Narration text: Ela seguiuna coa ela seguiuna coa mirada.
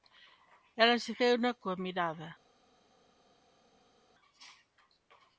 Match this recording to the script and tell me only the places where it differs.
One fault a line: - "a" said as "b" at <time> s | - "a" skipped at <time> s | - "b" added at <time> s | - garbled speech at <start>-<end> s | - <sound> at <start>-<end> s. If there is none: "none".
- "ela seguiuna coa" skipped at 1.8 s